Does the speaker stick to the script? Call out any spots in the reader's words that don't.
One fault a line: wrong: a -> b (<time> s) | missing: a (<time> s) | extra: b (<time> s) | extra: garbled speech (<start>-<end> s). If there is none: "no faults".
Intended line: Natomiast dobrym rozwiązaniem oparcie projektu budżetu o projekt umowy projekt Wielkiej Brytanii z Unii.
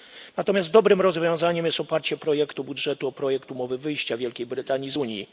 extra: jest (1.6 s)
wrong: projekt -> wyjścia (3.8 s)